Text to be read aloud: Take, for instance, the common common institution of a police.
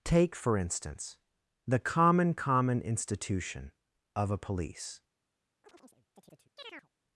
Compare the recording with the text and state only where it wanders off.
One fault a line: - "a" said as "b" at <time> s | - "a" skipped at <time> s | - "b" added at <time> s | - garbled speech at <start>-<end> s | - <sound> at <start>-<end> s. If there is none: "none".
- chirp at 5.6-6.9 s